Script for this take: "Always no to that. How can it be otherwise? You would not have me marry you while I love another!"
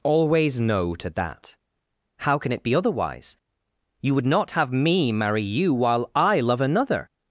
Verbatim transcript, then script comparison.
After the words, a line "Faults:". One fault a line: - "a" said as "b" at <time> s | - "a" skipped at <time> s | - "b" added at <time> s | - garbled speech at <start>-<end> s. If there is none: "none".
"Always no to that. How can it be otherwise? You would not have me marry you while I love another!"
Faults:
none